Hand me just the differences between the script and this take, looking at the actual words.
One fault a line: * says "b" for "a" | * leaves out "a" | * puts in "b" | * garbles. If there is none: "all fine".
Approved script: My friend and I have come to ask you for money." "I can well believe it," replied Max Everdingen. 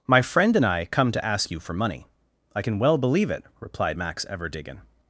* leaves out "have"